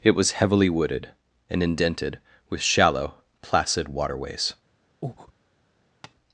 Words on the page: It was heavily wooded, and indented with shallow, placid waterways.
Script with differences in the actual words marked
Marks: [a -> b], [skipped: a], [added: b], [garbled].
It was heavily wooded, and indented with shallow, placid waterways.